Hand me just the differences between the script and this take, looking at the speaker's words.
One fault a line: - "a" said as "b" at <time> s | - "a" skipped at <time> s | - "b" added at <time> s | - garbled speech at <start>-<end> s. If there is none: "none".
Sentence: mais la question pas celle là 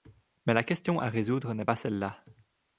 - "à résoudre n'est" added at 1.0 s